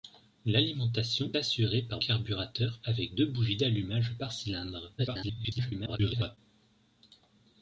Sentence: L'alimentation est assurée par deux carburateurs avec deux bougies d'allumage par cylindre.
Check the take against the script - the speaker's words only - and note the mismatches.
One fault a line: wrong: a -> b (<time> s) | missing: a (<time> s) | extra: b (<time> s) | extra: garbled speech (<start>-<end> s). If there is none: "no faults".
missing: est (1.3 s)
missing: deux (2.0 s)
extra: garbled speech (5.0-6.4 s)